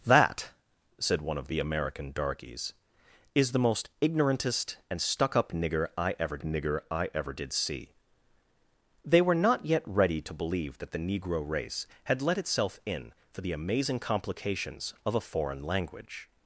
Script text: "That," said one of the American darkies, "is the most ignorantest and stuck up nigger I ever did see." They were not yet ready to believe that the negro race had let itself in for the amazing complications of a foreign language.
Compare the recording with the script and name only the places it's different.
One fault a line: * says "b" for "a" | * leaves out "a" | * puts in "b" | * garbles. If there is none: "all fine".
* puts in "nigger I ever"